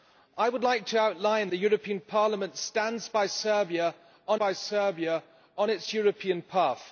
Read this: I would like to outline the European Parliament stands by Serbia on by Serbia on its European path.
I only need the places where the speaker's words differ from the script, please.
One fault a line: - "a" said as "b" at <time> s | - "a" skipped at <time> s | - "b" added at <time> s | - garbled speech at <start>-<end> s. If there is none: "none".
none